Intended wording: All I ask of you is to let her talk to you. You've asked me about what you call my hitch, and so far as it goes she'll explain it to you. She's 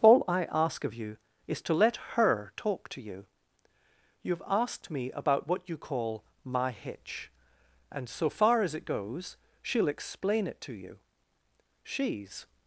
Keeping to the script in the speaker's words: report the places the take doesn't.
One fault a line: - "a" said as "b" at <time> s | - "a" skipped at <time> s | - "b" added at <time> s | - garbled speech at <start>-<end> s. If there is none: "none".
none